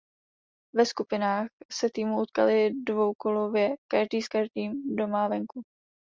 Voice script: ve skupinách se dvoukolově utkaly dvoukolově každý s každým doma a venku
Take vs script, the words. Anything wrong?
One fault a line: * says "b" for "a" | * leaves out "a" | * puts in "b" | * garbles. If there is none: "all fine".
* says "týmy" for "dvoukolově"